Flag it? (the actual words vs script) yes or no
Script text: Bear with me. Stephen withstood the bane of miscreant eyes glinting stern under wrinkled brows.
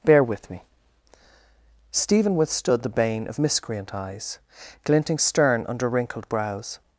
no